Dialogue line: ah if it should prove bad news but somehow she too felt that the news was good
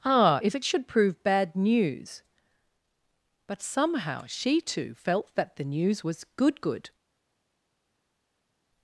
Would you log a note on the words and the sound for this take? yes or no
yes